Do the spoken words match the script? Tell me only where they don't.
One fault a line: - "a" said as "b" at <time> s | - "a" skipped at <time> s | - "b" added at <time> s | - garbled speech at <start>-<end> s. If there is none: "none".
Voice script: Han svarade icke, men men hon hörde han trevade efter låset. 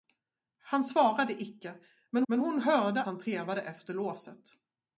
none